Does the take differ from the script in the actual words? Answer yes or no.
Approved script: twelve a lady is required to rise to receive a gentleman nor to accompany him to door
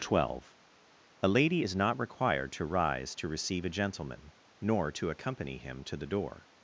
yes